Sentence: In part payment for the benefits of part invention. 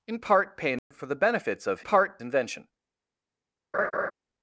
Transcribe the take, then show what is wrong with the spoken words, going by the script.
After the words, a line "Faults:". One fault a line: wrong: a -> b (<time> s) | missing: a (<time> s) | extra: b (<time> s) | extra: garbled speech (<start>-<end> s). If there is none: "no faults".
In part payment for the benefits of part invention.
Faults:
no faults